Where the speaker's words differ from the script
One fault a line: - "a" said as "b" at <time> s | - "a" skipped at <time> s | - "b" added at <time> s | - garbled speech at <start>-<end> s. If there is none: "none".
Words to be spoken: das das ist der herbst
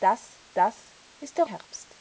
none